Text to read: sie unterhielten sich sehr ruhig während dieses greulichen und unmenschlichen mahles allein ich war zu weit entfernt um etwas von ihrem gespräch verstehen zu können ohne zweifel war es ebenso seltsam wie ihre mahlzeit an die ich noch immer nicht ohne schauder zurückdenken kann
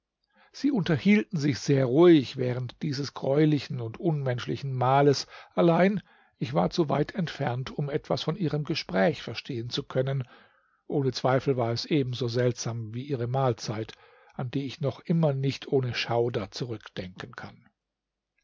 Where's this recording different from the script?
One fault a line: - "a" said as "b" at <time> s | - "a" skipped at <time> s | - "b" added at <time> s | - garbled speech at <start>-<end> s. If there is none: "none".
none